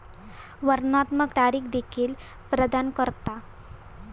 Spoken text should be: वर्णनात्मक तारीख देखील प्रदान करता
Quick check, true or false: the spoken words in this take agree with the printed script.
true